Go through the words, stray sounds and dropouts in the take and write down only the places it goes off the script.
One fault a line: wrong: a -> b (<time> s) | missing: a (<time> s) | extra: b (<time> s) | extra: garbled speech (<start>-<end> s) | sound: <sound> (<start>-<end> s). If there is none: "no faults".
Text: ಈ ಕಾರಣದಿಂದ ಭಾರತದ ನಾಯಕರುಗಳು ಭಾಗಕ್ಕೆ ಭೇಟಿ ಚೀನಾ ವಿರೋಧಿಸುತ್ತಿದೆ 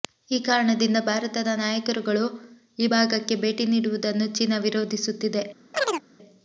extra: ಈ (2.8 s)
extra: ನೀಡುವುದನ್ನು (3.7 s)
sound: chirp (5.7-6.0 s)